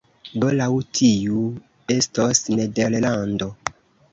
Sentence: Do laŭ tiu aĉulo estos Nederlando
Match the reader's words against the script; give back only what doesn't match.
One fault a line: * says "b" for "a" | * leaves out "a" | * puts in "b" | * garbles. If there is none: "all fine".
* leaves out "aĉulo"